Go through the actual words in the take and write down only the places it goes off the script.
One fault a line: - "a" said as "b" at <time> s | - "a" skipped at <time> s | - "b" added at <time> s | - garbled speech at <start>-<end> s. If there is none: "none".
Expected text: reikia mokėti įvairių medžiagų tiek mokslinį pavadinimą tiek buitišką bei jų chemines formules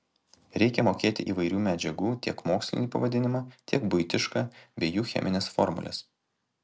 none